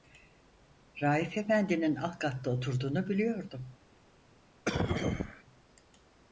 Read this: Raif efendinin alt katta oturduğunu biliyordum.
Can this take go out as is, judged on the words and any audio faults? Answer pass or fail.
fail